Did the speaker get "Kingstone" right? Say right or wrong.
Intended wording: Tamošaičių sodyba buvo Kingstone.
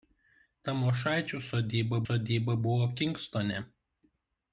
right